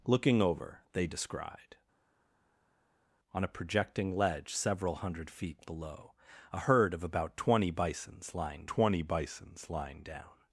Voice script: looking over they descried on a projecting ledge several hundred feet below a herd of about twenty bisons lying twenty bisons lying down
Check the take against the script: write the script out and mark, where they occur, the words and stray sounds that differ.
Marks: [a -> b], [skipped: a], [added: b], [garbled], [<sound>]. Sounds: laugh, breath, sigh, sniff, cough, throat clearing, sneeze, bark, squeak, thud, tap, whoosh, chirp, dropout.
looking over they descried on a projecting ledge several hundred feet below a herd of about twenty bisons lying twenty bisons lying down